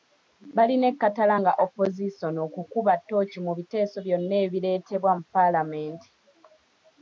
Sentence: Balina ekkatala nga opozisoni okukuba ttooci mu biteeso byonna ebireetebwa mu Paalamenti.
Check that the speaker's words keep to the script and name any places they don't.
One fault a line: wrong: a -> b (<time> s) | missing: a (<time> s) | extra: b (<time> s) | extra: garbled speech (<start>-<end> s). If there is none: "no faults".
no faults